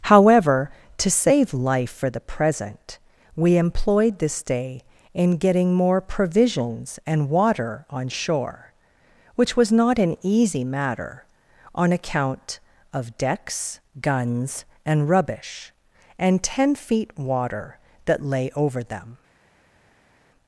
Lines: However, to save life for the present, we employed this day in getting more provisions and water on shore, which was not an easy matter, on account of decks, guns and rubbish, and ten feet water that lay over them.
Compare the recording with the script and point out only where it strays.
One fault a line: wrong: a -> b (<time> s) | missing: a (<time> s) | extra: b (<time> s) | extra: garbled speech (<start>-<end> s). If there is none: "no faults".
no faults